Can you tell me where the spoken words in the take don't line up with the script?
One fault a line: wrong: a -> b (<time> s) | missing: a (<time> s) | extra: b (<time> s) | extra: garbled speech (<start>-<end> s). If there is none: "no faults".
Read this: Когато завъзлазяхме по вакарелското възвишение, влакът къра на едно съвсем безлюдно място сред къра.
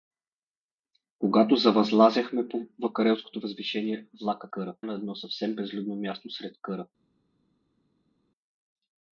no faults